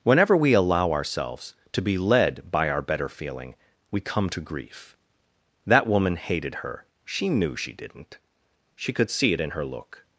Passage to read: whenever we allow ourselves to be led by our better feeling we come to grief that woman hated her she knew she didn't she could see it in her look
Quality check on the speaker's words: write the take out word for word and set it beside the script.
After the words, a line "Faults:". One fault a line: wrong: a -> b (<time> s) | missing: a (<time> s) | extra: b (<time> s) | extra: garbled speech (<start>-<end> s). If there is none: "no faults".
whenever we allow ourselves to be led by our better feeling we come to grief that woman hated her she knew she didn't she could see it in her look
Faults:
no faults